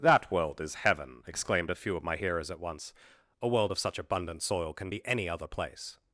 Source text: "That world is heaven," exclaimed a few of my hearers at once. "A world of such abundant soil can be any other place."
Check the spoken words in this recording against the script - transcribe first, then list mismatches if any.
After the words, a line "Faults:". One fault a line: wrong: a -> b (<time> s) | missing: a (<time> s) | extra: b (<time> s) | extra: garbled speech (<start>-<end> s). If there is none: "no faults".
"That world is heaven," exclaimed a few of my hearers at once. "A world of such abundant soil can be any other place."
Faults:
no faults